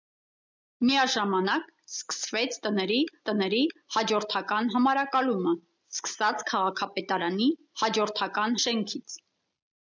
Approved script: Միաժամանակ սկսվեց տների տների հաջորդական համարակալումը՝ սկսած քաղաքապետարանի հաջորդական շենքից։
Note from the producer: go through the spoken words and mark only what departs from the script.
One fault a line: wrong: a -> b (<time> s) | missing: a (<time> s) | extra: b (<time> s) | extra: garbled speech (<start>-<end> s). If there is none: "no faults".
no faults